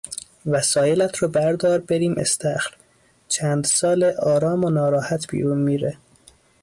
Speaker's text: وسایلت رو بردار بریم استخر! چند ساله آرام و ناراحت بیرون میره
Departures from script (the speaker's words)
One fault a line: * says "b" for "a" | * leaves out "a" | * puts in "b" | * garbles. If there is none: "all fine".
all fine